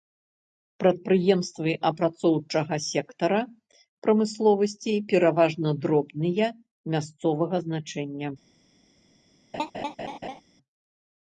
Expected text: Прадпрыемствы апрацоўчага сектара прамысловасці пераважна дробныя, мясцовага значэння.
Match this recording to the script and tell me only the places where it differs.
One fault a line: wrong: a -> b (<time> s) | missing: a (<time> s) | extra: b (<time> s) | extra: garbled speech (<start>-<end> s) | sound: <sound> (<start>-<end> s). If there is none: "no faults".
sound: laugh (9.5-10.4 s)